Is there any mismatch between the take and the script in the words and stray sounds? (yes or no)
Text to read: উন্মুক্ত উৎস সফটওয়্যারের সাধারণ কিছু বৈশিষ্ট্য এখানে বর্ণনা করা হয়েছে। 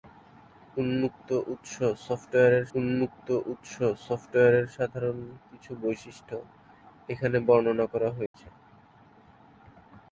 yes